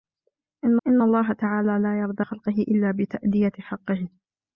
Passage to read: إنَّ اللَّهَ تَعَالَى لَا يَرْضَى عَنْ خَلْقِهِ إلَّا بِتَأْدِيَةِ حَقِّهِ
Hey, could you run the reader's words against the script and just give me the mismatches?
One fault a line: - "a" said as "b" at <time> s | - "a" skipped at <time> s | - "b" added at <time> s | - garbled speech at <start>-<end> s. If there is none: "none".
- "إنَّ" added at 0.9 s
- "عَنْ" skipped at 2.2 s